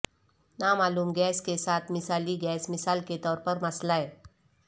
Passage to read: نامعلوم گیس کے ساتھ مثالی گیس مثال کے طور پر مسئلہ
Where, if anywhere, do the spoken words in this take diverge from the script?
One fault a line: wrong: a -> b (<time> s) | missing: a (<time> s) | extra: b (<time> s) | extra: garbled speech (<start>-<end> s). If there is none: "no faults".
no faults